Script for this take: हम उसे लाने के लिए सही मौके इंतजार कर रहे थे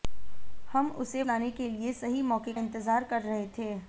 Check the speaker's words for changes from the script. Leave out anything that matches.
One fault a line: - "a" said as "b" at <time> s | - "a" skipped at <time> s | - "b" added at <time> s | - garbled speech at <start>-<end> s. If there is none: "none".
none